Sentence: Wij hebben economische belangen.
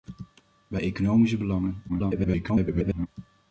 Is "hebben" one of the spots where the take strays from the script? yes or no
yes